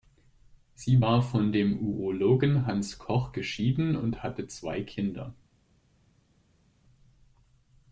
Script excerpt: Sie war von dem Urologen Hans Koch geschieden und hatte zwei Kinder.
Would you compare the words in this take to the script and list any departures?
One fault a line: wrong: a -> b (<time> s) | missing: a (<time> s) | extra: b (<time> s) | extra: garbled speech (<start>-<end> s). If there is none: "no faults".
no faults